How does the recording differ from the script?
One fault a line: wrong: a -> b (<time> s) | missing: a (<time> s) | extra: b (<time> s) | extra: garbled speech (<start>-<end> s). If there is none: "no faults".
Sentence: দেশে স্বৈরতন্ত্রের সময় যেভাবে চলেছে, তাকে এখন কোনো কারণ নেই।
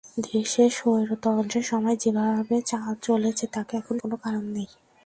no faults